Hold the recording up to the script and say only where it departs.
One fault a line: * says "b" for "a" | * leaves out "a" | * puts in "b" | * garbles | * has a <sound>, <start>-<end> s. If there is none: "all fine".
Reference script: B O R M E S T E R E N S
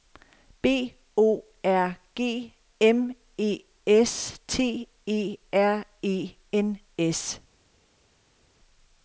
* puts in "G"